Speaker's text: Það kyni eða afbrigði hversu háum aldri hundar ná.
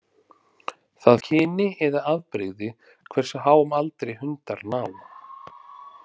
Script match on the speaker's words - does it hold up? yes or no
yes